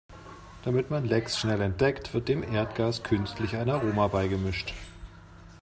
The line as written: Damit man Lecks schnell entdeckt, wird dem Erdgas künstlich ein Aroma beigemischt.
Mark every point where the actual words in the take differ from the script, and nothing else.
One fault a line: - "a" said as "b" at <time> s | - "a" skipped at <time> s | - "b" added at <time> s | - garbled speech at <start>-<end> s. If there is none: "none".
none